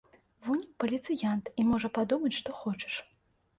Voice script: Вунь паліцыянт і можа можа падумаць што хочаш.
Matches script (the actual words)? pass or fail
fail